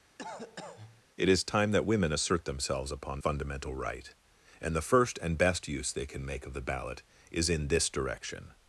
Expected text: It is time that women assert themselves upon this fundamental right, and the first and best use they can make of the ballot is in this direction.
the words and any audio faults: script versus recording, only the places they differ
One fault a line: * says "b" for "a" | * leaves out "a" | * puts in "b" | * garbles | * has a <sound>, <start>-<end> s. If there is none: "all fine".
* has a cough, 0.2-1.0 s
* leaves out "this"